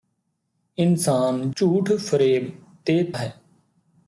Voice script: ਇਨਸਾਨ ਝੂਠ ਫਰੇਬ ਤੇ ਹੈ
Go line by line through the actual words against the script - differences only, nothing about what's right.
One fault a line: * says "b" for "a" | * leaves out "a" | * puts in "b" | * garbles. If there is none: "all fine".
all fine